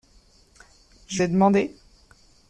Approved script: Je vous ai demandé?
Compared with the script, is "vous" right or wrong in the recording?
wrong